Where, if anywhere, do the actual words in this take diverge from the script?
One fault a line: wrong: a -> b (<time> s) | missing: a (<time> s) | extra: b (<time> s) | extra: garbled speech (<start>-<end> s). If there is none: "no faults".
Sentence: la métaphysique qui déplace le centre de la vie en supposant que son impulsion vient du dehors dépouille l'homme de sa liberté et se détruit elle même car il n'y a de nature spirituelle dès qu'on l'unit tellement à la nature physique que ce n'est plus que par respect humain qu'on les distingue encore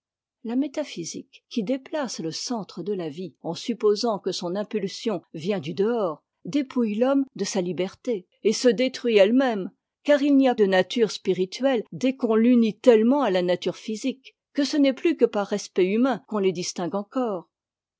no faults